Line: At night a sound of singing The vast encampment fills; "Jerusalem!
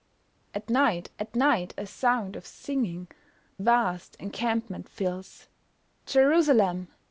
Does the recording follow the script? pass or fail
fail